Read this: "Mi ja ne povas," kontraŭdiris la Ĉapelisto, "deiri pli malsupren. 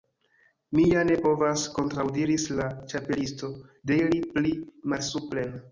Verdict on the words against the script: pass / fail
pass